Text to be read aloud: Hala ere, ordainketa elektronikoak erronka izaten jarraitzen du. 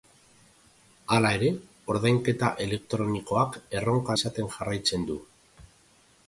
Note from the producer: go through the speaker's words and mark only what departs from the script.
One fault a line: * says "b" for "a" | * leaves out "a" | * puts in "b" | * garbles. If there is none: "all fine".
all fine